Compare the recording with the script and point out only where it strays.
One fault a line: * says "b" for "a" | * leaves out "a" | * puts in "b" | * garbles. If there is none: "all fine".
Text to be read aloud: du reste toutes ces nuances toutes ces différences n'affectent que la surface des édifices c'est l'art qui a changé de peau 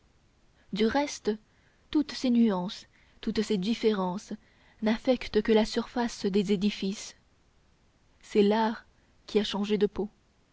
all fine